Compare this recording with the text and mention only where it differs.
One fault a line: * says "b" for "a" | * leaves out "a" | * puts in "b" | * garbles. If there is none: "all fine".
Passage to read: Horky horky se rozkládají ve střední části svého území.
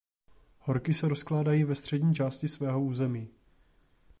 * leaves out "horky"